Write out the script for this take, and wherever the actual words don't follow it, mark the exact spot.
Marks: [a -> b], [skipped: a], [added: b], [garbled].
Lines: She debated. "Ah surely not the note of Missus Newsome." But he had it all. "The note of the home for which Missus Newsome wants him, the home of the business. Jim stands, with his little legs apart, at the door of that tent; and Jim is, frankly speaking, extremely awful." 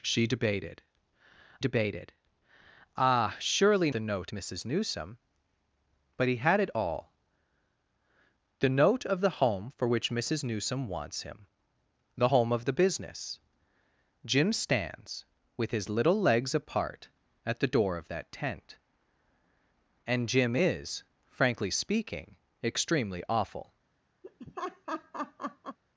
She debated. [added: debated] "Ah surely [skipped: not] the note [skipped: of] Missus Newsome." But he had it all. "The note of the home for which Missus Newsome wants him, the home of the business. Jim stands, with his little legs apart, at the door of that tent; and Jim is, frankly speaking, extremely awful."